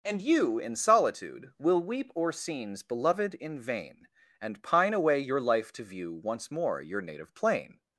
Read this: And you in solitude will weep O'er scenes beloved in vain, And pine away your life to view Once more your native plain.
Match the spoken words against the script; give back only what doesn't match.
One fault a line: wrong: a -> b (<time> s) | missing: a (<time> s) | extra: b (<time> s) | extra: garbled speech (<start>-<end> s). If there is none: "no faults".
no faults